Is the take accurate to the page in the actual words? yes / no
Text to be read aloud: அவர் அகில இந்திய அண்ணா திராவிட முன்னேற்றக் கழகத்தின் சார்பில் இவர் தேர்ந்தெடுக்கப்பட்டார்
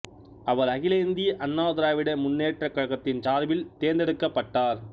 no